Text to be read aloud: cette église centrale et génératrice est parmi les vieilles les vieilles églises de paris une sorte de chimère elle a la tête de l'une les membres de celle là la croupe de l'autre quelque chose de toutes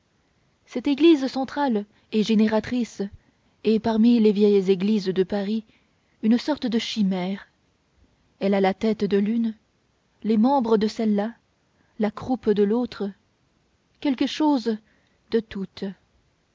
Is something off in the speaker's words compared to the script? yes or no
yes